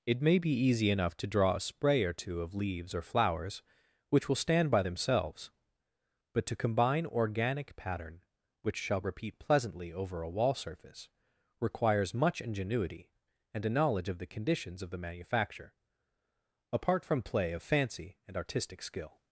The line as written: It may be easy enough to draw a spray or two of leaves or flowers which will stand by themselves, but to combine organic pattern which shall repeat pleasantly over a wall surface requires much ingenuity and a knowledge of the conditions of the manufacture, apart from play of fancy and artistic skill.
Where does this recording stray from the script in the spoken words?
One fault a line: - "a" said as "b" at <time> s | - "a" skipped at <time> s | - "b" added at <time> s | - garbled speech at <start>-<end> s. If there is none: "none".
none